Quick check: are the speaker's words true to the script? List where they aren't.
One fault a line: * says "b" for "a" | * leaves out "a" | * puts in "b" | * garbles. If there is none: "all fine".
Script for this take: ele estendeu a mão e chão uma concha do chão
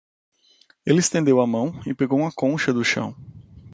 * says "pegou" for "chão"